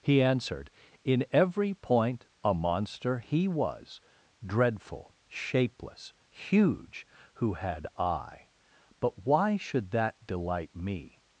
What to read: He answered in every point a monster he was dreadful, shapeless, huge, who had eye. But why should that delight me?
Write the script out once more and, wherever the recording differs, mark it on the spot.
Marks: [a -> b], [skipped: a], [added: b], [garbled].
He answered in every point a monster he was dreadful, shapeless, huge, who had eye. But why should that delight me?